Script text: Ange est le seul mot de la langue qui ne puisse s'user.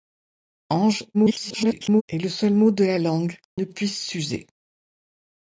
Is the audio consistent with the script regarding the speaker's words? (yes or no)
no